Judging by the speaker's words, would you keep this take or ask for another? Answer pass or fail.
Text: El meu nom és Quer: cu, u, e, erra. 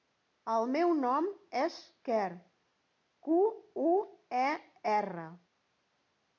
pass